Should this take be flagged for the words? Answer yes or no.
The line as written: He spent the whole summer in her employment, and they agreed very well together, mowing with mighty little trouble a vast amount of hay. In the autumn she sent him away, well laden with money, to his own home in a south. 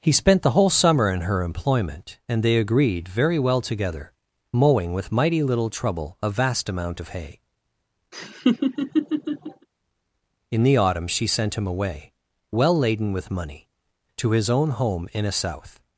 no